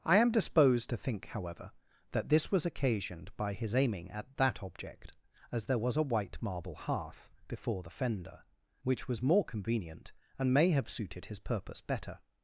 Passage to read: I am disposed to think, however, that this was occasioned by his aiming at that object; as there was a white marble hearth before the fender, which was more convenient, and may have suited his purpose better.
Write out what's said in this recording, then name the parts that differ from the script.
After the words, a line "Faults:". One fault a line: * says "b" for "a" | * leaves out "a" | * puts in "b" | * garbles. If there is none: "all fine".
I am disposed to think, however, that this was occasioned by his aiming at that object; as there was a white marble hearth before the fender, which was more convenient, and may have suited his purpose better.
Faults:
all fine